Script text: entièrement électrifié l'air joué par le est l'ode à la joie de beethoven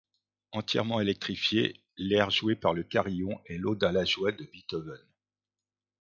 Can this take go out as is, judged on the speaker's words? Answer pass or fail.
fail